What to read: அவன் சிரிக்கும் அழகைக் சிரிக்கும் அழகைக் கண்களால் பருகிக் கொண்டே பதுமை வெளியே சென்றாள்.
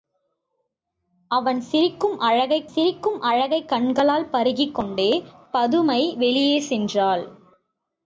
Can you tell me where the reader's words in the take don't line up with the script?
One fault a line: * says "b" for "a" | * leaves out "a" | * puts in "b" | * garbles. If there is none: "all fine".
all fine